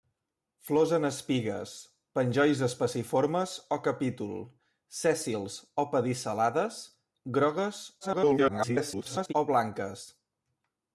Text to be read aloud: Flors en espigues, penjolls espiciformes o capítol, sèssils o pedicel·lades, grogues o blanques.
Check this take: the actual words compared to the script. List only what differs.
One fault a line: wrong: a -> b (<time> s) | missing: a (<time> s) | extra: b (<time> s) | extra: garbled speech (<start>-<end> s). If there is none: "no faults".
extra: garbled speech (8.0-9.3 s)